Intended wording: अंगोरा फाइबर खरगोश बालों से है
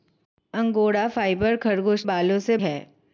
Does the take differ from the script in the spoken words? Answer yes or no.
no